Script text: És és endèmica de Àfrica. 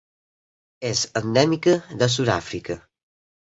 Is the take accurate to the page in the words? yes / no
no